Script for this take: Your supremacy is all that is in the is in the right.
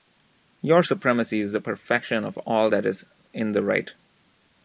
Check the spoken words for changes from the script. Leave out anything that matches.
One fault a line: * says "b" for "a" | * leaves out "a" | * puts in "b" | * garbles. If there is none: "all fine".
* says "the perfection of all that" for "all that is in the"